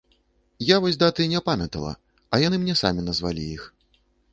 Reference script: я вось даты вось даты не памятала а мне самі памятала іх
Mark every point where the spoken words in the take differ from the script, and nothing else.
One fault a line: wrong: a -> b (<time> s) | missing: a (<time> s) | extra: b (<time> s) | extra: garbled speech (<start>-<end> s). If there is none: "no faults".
missing: вось даты (1.3 s)
extra: яны (2.5 s)
wrong: памятала -> назвалі (3.1 s)